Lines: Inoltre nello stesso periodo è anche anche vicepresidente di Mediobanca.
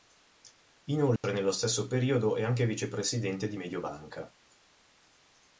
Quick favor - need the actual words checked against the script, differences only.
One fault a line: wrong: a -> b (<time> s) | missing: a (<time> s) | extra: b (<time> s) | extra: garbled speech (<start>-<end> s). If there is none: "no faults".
missing: anche (2.6 s)